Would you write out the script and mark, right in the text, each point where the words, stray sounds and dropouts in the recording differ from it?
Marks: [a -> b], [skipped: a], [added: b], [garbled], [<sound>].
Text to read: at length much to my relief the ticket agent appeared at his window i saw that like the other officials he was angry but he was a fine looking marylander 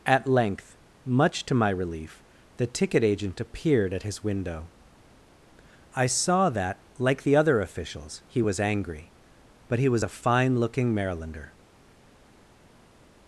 at length much to my relief the ticket agent appeared at his window i saw that like the other officials he was angry but he was a fine looking marylander